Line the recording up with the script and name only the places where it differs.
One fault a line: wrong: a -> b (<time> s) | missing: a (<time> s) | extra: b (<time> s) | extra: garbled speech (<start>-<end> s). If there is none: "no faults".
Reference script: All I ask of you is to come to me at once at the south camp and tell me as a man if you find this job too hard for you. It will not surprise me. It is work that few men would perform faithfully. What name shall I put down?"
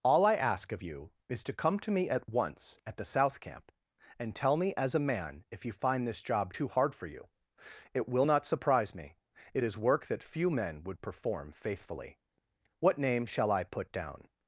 no faults